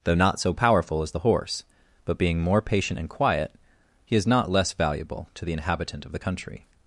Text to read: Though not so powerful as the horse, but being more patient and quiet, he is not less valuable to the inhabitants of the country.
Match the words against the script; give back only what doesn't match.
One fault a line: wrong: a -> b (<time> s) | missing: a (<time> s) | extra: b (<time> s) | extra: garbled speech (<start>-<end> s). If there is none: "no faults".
wrong: inhabitants -> inhabitant (5.5 s)